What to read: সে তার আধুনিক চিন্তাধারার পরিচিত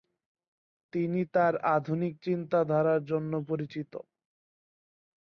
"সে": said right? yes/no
no